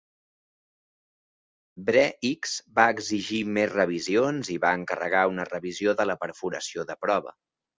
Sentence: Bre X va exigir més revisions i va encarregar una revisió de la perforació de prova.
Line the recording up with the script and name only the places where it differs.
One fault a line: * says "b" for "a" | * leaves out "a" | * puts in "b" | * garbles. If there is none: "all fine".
all fine